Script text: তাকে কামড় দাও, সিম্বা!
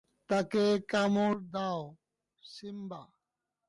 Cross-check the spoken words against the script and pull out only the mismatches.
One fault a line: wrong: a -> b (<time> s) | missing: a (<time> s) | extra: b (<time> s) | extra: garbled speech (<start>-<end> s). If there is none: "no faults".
no faults